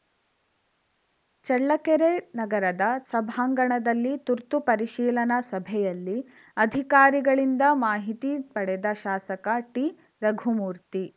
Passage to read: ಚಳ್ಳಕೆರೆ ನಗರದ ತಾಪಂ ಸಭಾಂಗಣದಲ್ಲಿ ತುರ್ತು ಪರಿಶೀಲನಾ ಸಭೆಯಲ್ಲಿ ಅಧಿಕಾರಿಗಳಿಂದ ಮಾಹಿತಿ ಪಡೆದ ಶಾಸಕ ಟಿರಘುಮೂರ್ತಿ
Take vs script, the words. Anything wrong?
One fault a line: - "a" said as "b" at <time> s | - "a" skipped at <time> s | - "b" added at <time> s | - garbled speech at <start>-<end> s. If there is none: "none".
- "ತಾಪಂ" skipped at 2.8 s